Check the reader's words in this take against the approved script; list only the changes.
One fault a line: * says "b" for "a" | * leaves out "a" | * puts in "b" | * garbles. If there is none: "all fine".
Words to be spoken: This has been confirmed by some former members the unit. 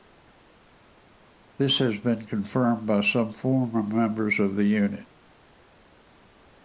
* puts in "of"